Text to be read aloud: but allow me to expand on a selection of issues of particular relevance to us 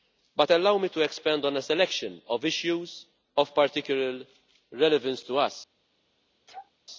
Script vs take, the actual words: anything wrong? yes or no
no